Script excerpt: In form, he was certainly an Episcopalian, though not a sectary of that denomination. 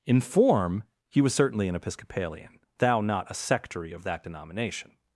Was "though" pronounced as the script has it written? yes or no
no